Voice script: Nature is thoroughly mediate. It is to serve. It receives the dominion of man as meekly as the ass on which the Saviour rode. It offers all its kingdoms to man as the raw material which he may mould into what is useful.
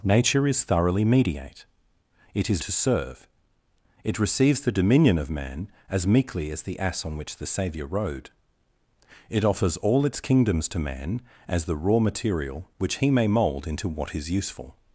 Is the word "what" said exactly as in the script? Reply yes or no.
yes